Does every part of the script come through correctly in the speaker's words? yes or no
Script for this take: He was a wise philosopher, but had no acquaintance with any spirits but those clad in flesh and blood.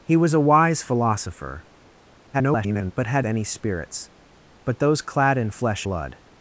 no